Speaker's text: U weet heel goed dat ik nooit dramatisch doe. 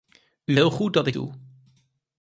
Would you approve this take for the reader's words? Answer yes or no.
no